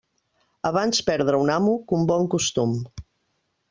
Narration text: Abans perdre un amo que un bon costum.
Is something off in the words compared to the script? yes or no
no